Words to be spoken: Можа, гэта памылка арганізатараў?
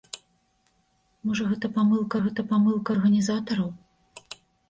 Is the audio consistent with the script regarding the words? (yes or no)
no